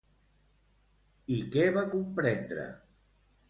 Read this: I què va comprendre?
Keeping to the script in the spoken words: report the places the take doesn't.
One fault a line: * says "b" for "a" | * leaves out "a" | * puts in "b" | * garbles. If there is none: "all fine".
all fine